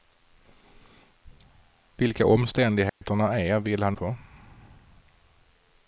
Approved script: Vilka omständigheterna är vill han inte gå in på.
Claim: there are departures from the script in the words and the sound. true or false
true